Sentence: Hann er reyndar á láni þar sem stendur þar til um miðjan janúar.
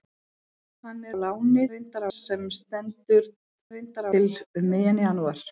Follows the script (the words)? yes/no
no